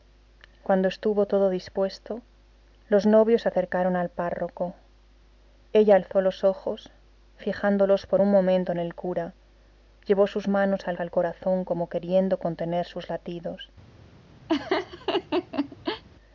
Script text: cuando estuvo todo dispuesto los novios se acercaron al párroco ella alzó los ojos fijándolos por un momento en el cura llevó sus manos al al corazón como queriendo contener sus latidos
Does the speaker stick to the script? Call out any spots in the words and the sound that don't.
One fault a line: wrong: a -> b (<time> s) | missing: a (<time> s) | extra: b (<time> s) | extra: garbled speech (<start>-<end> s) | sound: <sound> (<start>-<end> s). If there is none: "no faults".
sound: laugh (14.5-16.0 s)